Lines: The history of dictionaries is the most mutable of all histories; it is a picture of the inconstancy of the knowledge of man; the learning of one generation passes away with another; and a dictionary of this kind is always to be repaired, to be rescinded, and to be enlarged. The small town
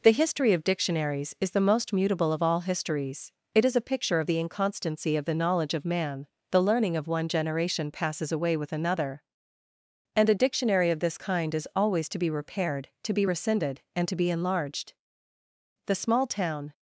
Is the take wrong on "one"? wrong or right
right